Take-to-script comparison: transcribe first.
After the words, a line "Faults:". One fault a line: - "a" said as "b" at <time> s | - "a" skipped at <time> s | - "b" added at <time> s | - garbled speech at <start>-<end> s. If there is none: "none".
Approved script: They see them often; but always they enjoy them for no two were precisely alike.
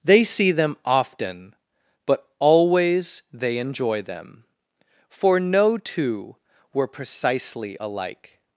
They see them often; but always they enjoy them for no two were precisely alike.
Faults:
none